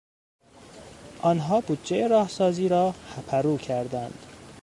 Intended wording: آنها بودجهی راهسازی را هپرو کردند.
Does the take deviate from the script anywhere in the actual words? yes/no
no